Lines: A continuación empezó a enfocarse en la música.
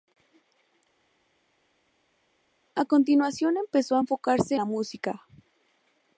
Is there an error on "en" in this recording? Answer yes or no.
yes